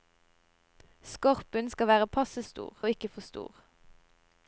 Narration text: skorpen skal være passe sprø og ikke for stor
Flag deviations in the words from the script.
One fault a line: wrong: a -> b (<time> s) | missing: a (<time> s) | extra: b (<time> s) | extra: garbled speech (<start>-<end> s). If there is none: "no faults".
wrong: sprø -> stor (2.4 s)